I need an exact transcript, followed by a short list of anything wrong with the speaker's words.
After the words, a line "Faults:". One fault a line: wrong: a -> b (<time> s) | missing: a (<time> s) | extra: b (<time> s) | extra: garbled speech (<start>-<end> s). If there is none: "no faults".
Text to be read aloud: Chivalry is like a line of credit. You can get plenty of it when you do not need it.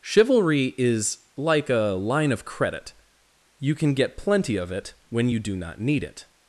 Chivalry is like a line of credit. You can get plenty of it when you do not need it.
Faults:
no faults